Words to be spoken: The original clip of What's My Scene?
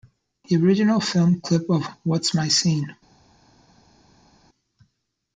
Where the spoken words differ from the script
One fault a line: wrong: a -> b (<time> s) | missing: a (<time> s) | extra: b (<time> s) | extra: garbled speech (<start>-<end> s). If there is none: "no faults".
extra: film (1.0 s)